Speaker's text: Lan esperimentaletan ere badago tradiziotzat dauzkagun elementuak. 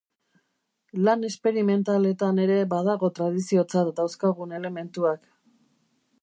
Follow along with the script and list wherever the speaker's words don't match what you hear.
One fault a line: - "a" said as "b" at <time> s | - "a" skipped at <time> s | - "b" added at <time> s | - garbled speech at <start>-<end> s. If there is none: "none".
none